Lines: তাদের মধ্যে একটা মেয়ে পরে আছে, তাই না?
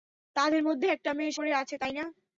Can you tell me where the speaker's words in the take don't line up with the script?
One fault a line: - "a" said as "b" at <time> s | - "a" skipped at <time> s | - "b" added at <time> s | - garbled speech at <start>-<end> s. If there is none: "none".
none